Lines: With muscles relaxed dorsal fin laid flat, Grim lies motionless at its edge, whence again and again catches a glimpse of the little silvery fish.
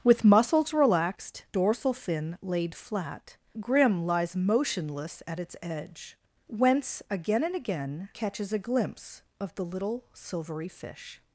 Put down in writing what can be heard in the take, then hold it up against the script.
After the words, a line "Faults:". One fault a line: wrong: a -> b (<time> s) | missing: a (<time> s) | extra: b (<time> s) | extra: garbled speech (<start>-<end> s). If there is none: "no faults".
With muscles relaxed dorsal fin laid flat, Grim lies motionless at its edge, whence again and again catches a glimpse of the little silvery fish.
Faults:
no faults